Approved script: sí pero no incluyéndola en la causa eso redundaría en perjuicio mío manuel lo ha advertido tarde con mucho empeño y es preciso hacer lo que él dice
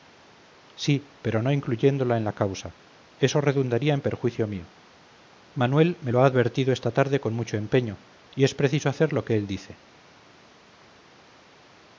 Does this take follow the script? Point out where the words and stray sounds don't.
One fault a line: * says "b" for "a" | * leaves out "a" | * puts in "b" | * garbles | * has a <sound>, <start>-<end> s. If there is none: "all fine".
* puts in "me"
* puts in "esta"